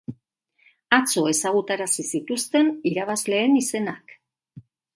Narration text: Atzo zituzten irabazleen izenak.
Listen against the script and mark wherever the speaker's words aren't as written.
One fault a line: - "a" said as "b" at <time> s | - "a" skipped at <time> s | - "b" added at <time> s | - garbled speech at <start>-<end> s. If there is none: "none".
- "ezagutarazi" added at 1.3 s